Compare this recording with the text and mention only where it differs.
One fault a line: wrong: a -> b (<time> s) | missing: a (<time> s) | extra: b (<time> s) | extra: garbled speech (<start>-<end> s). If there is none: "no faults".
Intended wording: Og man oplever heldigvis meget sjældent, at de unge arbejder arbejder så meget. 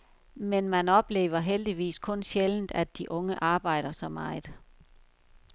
wrong: Og -> Men (0.3 s)
wrong: meget -> kun (2.0 s)
missing: arbejder (3.9 s)